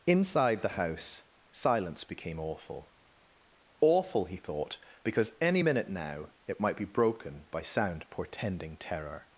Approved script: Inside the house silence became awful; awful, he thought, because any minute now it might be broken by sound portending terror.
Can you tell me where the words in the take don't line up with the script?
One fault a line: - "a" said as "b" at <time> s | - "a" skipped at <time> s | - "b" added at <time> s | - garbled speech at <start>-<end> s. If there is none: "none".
none